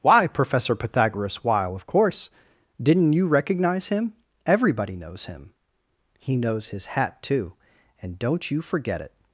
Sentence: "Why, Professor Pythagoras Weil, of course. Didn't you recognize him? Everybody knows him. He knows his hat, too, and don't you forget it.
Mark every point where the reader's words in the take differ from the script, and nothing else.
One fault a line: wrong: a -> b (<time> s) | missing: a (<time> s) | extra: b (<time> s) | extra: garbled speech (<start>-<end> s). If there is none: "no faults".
no faults